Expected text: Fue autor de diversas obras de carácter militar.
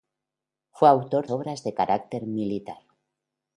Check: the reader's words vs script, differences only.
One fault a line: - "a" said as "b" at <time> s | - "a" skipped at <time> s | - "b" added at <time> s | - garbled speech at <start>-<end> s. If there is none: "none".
- "de diversas" skipped at 1.3 s